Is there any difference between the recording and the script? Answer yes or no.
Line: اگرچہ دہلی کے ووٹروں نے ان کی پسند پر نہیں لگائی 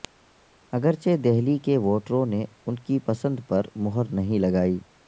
yes